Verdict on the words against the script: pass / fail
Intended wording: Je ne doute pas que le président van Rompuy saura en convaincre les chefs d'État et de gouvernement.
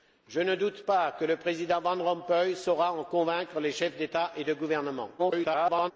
fail